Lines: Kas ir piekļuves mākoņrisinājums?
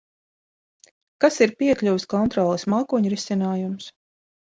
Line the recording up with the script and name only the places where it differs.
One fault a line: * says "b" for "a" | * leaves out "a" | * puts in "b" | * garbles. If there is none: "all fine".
* puts in "kontroles"